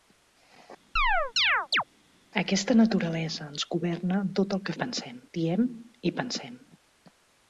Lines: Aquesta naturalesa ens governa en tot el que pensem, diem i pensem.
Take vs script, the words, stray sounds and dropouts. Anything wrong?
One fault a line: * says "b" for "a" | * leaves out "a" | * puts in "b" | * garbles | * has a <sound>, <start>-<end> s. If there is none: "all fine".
* has a chirp, 1.0-1.8 s